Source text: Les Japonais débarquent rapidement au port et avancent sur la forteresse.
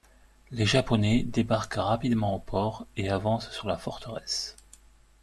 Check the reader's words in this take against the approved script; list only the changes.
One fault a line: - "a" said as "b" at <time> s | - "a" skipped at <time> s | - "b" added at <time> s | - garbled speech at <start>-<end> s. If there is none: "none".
none